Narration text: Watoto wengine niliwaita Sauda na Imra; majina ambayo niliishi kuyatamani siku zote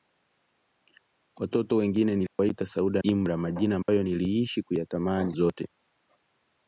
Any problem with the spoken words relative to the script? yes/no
yes